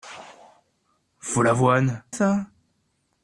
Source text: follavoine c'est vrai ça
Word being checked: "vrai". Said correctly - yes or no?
no